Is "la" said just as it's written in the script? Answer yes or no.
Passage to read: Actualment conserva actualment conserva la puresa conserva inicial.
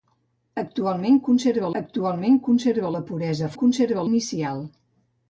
yes